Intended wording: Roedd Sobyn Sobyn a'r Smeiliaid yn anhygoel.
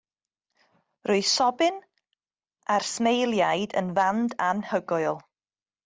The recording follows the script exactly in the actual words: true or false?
false